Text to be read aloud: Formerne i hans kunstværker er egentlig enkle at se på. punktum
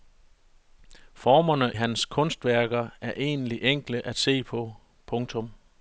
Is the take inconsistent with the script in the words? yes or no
yes